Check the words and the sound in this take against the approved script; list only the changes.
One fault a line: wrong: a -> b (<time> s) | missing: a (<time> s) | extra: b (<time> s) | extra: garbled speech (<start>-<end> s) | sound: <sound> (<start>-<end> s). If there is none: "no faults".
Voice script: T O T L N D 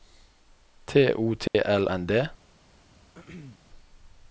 sound: dropout (1.5-1.5 s)
sound: throat clearing (3.1-3.6 s)